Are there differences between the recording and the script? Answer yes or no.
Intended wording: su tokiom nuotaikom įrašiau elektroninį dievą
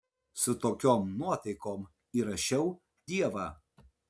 yes